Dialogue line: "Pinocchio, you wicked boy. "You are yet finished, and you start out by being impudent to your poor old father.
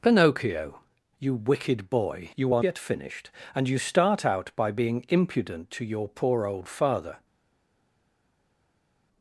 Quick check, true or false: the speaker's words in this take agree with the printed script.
true